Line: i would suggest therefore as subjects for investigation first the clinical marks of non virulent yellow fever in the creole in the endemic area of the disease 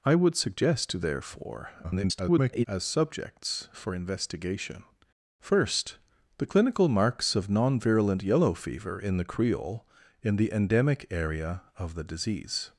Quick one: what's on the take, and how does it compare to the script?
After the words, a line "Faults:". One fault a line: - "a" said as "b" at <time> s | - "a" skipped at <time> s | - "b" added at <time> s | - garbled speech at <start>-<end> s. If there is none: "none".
i would suggest therefore [garbled] as subjects for investigation first the clinical marks of non virulent yellow fever in the creole in the endemic area of the disease
Faults:
- garbled speech at 1.8-2.7 s